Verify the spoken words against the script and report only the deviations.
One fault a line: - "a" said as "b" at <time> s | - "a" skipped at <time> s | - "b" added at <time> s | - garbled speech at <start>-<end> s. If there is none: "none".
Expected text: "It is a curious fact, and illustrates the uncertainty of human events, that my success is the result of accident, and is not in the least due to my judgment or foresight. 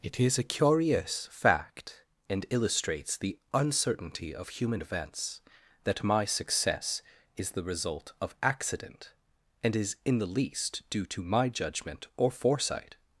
- "not" skipped at 10.0 s